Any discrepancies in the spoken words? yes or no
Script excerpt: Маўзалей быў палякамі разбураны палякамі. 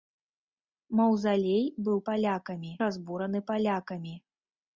no